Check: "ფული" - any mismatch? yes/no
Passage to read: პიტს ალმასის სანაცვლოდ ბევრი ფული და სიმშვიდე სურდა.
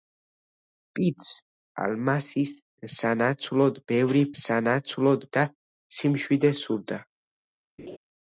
yes